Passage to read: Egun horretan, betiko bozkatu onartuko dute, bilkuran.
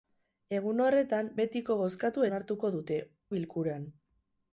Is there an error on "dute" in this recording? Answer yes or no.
no